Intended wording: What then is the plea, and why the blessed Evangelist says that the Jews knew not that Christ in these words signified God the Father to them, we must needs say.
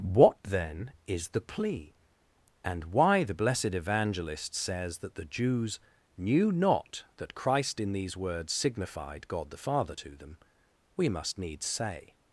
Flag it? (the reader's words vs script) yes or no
no